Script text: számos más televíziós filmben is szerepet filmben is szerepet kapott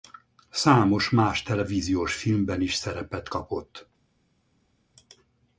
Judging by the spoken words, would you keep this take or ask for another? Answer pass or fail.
fail